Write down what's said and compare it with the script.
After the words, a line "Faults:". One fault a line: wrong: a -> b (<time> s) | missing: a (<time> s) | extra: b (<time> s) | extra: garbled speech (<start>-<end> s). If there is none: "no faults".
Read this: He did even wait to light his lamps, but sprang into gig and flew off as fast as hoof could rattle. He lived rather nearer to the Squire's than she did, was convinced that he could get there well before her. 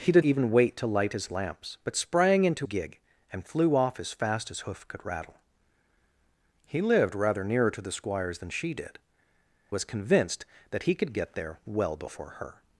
He did even wait to light his lamps, but sprang into gig and flew off as fast as hoof could rattle. He lived rather nearer to the Squire's than she did, was convinced that he could get there well before her.
Faults:
no faults